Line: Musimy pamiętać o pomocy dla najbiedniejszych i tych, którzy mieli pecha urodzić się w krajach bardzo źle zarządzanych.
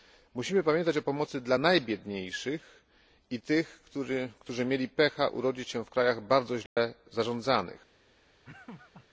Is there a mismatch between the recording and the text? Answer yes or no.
no